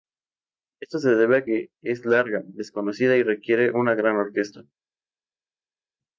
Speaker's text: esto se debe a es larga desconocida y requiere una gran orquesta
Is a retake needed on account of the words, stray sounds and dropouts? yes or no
yes